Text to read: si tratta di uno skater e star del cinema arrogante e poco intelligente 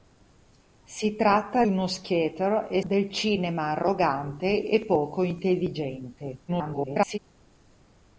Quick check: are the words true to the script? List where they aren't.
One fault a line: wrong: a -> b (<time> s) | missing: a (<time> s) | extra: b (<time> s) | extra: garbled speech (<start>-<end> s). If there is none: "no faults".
missing: di (1.6 s)
missing: star (2.8 s)
extra: garbled speech (6.5-7.2 s)